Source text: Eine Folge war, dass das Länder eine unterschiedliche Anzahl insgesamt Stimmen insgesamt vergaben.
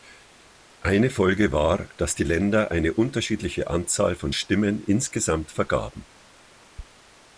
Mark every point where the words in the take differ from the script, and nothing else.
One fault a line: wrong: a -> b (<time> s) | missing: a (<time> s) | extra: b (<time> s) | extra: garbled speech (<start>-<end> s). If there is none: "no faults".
wrong: das -> die (2.1 s)
wrong: insgesamt -> von (4.2 s)